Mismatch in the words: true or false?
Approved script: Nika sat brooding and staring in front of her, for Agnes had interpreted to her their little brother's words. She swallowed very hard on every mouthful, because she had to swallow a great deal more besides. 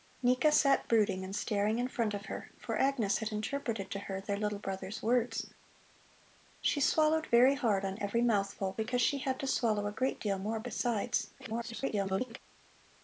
true